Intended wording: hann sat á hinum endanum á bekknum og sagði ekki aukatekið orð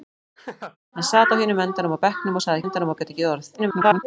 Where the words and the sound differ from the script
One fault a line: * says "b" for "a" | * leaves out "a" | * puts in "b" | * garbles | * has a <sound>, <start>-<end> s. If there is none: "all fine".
* has a laugh, 0.4-0.8 s
* says "endanum" for "ekki"
* garbles